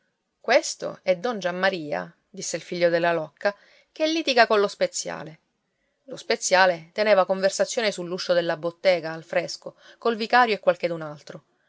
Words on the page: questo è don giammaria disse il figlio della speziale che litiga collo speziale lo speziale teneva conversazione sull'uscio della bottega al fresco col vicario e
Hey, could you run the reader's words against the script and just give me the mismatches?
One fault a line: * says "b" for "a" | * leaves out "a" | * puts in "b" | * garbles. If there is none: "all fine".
* says "locca" for "speziale"